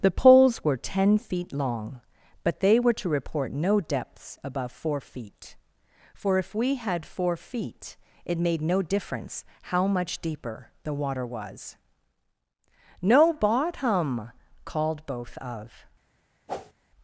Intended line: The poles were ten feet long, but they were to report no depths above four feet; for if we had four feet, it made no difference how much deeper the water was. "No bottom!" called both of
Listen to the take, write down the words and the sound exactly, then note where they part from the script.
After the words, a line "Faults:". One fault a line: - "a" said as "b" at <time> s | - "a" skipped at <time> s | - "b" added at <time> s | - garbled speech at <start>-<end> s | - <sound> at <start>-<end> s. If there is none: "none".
The poles were ten feet long, but they were to report no depths above four feet; for if we had four feet, it made no difference how much deeper the water was. "No bottom!" called both of
Faults:
- whoosh at 16.5-16.7 s